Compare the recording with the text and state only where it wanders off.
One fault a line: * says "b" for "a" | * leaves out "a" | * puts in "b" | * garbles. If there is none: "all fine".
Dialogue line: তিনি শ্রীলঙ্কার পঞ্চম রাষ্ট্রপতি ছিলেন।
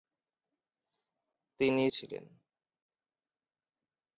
* leaves out "শ্রীলঙ্কার পঞ্চম রাষ্ট্রপতি"